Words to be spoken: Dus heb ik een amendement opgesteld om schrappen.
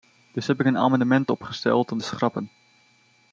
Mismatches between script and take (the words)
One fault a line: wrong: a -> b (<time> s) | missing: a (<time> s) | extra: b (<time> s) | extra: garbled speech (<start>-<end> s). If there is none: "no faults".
no faults